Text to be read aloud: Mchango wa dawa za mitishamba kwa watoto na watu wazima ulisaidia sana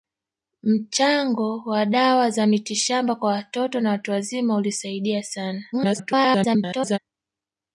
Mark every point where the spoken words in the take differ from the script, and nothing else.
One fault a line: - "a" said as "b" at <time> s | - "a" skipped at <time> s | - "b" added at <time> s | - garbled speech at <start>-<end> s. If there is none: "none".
- garbled speech at 5.7-7.0 s